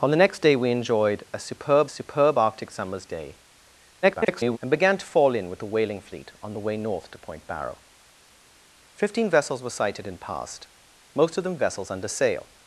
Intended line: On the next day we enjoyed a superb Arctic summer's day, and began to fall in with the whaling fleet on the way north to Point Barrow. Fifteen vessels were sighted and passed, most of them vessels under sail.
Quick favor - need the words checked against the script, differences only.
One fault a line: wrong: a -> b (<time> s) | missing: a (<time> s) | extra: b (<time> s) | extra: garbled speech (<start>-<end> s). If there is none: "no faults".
extra: superb (1.9 s)
extra: garbled speech (4.0-4.6 s)